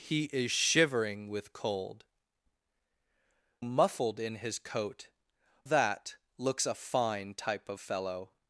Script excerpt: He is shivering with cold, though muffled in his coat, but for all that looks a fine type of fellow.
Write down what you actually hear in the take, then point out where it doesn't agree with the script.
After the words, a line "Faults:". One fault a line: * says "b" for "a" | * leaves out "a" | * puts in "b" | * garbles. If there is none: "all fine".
He is shivering with cold, muffled in his coat, that looks a fine type of fellow.
Faults:
* leaves out "though"
* leaves out "but for all"